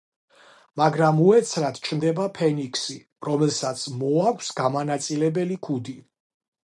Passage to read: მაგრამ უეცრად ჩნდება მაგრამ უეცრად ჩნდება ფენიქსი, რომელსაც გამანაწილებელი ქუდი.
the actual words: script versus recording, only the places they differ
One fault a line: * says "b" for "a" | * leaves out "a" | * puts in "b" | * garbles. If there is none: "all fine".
* leaves out "მაგრამ უეცრად ჩნდება"
* puts in "მოაქვს"